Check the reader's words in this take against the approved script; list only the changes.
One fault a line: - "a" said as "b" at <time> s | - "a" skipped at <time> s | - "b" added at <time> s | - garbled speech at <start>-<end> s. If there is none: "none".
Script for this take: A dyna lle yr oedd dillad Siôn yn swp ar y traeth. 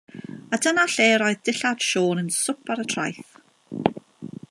none